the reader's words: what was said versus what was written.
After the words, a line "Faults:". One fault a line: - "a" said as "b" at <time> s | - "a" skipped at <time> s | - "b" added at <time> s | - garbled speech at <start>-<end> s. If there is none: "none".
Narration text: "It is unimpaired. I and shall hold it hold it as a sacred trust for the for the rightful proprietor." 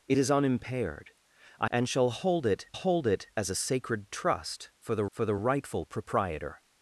"It is unimpaired. I and shall hold it hold it as a sacred trust for the for the rightful proprietor."
Faults:
none